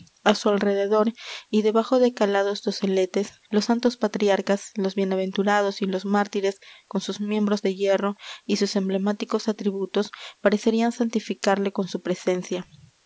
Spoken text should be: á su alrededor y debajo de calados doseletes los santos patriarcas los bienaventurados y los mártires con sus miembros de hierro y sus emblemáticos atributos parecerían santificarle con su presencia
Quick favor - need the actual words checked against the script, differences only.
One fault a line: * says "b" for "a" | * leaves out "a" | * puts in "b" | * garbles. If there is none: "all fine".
all fine